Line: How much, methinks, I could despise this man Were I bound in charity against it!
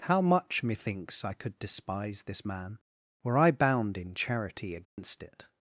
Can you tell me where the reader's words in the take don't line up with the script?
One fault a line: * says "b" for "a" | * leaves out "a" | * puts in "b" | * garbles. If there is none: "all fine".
all fine